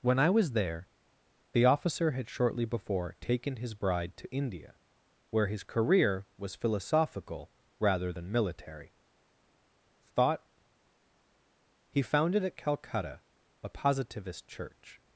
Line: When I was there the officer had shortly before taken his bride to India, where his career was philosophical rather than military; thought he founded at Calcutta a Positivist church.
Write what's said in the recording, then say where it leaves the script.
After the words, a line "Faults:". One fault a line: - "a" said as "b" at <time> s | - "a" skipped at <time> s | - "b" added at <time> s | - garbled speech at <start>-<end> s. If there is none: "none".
When I was there the officer had shortly before taken his bride to India, where his career was philosophical rather than military; thought he founded at Calcutta a Positivist church.
Faults:
none